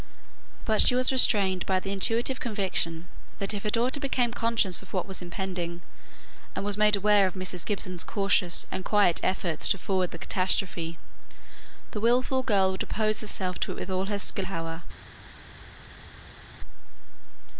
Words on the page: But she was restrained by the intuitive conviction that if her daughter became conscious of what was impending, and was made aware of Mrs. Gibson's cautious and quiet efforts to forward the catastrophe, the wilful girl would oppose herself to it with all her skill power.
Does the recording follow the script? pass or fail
pass